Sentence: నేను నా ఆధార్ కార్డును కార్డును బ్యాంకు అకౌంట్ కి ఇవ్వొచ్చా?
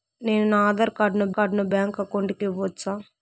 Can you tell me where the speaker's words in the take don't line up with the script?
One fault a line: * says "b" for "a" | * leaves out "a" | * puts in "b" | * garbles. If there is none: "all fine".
all fine